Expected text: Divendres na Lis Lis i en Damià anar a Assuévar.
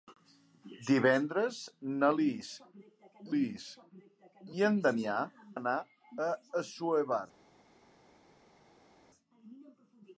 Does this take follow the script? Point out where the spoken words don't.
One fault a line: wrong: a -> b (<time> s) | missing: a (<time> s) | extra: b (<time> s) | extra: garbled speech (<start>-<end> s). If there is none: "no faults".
no faults